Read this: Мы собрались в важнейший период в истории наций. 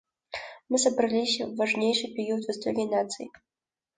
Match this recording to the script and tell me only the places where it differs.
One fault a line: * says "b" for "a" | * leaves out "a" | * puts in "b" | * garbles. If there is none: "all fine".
all fine